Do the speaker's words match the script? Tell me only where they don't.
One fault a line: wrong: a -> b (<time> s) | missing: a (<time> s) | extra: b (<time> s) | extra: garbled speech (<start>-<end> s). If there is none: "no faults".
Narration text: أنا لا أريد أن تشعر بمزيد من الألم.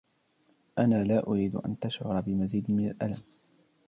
no faults